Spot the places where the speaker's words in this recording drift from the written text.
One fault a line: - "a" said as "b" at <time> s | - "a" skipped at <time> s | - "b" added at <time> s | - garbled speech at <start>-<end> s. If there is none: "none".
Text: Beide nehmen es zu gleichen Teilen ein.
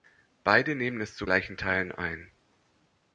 none